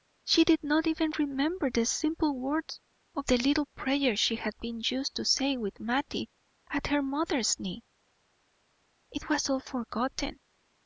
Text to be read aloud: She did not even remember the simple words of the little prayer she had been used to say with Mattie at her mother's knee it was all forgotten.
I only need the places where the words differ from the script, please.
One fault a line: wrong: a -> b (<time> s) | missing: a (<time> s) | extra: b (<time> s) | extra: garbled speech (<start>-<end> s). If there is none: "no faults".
no faults